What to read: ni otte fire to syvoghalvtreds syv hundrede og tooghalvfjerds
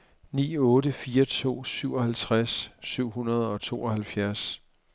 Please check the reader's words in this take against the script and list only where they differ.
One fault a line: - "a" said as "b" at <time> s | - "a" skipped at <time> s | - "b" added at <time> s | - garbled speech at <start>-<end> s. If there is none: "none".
none